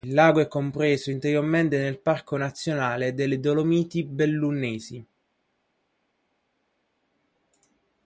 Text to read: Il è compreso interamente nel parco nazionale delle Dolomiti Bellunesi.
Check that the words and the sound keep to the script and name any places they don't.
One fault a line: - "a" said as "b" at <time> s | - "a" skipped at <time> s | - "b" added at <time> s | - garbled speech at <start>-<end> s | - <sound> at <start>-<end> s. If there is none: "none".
- "lago" added at 0.1 s